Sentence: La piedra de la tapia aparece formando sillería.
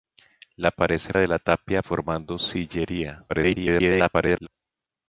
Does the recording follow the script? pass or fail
fail